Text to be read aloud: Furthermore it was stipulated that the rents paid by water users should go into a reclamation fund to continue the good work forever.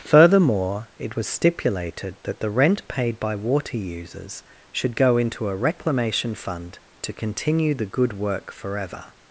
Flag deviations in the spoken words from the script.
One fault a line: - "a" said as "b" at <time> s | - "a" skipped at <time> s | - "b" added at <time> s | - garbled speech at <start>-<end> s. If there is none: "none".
- "rents" said as "rent" at 2.5 s